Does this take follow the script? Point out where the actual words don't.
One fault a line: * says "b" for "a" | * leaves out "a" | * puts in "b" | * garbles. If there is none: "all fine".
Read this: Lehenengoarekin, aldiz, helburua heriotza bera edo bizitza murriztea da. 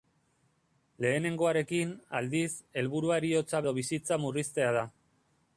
* leaves out "bera"